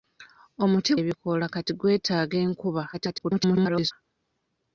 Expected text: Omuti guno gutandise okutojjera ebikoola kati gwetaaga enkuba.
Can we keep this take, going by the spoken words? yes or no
no